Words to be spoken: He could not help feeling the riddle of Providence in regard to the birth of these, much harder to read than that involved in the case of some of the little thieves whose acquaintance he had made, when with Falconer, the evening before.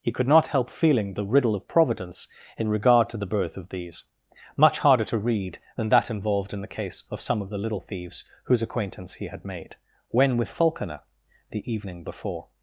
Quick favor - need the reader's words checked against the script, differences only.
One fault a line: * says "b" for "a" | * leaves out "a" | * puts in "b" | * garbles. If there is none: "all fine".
all fine